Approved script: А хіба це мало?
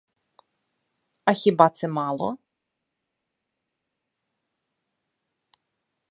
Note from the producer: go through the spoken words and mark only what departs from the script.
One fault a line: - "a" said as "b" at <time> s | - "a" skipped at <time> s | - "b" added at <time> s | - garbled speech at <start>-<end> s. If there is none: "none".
none